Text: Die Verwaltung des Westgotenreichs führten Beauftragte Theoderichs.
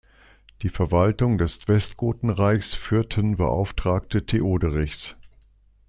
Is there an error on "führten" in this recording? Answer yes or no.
no